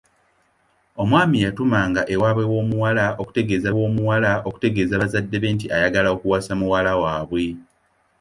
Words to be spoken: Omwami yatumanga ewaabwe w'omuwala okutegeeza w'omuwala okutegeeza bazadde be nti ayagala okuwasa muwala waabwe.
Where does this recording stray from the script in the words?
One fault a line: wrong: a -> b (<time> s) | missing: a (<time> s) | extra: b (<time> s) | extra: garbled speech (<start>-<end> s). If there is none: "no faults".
no faults